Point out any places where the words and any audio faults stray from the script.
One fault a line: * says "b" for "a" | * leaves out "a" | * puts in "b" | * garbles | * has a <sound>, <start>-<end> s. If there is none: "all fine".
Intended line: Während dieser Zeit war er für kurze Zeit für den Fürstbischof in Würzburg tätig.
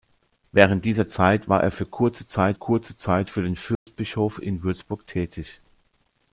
* puts in "kurze Zeit"
* has a dropout, 3.7-3.9 s